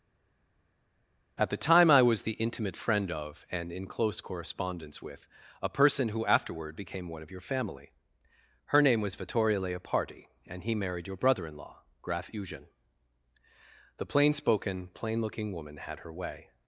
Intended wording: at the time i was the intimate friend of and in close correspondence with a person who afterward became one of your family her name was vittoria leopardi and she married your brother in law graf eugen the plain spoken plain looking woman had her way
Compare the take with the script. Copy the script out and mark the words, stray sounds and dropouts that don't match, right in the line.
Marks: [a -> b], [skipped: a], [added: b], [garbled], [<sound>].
at the time i was the intimate friend of and in close correspondence with a person who afterward became one of your family her name was vittoria leopardi and [she -> he] married your brother in law graf eugen the plain spoken plain looking woman had her way